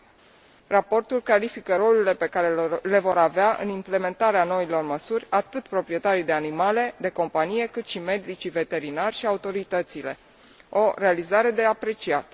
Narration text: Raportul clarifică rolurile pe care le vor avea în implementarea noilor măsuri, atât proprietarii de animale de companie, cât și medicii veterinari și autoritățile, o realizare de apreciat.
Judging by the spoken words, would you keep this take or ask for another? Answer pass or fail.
pass